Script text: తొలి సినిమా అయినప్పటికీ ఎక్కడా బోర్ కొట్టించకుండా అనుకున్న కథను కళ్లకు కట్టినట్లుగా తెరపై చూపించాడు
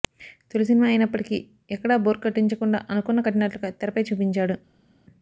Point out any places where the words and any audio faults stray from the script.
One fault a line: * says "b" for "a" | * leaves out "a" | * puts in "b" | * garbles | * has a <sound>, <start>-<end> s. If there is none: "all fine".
* leaves out "కథను కళ్లకు"